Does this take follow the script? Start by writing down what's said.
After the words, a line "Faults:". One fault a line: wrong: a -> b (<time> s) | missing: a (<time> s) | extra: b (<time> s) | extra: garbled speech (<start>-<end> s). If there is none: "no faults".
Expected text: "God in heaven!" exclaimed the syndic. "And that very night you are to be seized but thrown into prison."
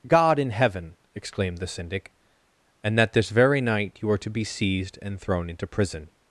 "God in heaven!" exclaimed the syndic. "And that this very night you are to be seized and thrown into prison."
Faults:
extra: this (3.1 s)
wrong: but -> and (5.0 s)